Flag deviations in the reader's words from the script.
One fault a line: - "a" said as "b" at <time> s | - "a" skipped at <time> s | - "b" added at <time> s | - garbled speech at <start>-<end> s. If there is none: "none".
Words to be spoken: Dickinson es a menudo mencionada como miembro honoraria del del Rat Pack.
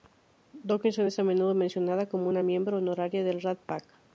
- "una" added at 2.3 s
- "del" skipped at 3.4 s